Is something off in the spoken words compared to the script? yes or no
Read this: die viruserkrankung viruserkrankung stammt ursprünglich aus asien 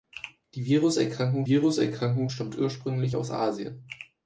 no